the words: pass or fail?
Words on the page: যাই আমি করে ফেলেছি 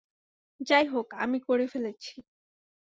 fail